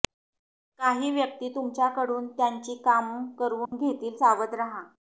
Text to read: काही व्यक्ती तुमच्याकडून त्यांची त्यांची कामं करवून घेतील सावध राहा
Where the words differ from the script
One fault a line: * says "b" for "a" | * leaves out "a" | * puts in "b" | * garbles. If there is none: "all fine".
* leaves out "त्यांची"